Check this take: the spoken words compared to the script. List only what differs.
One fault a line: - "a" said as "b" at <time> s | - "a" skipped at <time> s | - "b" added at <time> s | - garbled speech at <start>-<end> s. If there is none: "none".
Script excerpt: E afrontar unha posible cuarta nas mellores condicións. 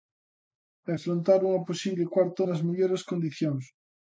none